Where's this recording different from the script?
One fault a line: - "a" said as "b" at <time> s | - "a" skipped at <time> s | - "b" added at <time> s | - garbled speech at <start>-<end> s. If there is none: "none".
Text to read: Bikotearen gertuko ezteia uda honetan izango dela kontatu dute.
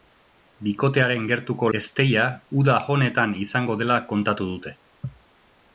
none